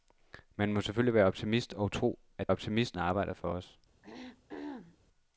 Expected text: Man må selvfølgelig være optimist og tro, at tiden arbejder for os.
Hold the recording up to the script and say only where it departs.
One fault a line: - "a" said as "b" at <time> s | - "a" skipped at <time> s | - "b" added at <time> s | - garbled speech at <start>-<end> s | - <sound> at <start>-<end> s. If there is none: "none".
- "tiden" said as "optimist" at 2.5 s
- throat clearing at 4.0-5.0 s